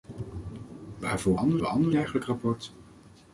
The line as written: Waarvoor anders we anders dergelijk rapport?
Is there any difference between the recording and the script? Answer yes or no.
no